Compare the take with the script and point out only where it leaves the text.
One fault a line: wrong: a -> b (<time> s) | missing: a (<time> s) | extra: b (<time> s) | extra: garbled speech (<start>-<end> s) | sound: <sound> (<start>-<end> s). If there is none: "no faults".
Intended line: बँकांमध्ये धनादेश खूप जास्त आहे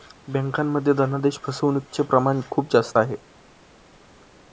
extra: फसवणूकचे प्रमाण (1.4 s)